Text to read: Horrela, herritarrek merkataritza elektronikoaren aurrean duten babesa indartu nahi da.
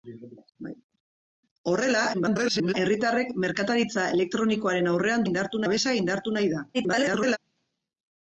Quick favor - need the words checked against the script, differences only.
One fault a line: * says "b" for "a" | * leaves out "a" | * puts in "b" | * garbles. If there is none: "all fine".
* garbles
* says "indartu" for "duten"
* garbles